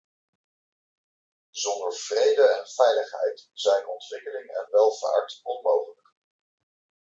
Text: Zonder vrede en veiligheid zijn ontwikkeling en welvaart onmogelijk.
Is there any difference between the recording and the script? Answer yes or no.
no